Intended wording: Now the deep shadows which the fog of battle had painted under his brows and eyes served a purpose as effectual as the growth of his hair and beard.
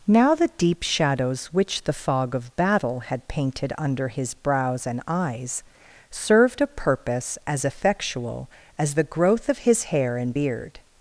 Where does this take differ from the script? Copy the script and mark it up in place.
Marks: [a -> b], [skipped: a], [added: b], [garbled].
Now the deep shadows which the fog of battle had painted under his brows and eyes served a purpose as effectual as the growth of his hair and beard.